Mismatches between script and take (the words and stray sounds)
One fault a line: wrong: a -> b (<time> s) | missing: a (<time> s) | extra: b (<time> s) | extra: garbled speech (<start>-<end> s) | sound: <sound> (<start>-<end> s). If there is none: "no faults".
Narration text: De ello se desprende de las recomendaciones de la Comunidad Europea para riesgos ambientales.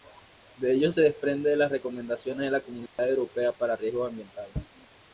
sound: dropout (2.9-3.0 s)